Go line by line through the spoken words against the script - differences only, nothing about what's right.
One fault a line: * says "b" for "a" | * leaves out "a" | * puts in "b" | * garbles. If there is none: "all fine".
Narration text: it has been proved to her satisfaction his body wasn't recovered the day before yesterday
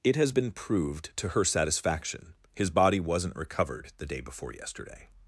all fine